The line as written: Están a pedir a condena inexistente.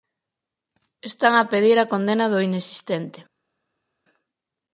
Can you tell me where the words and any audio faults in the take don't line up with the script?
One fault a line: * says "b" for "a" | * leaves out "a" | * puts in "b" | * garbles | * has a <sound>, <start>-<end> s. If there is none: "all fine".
* puts in "do"